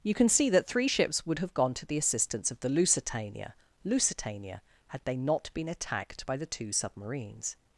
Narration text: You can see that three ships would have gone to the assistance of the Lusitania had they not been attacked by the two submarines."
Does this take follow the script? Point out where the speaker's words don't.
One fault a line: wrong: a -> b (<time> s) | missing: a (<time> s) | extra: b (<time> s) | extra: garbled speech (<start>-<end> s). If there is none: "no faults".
extra: Lusitania (3.8 s)